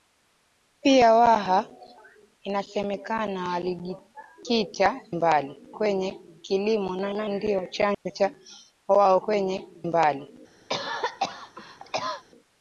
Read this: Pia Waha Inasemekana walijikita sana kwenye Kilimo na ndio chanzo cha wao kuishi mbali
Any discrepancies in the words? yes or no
yes